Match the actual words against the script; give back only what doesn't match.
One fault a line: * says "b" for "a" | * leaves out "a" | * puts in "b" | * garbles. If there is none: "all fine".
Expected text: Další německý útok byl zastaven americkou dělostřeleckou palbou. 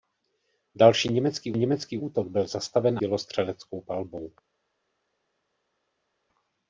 * puts in "německý"
* leaves out "americkou"